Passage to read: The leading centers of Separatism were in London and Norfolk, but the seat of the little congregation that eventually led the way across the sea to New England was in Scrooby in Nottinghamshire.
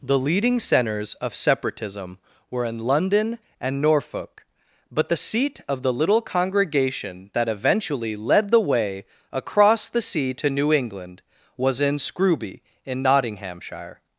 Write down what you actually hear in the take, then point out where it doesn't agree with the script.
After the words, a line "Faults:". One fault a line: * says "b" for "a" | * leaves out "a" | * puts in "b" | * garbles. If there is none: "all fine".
The leading centers of Separatism were in London and Norfolk, but the seat of the little congregation that eventually led the way across the sea to New England was in Scrooby in Nottinghamshire.
Faults:
all fine